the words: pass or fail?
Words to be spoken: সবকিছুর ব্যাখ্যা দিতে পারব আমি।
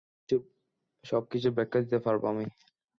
pass